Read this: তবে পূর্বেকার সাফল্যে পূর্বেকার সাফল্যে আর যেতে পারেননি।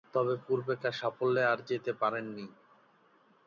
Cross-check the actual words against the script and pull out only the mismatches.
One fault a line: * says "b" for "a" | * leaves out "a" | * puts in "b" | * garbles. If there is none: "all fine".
* leaves out "পূর্বেকার সাফল্যে"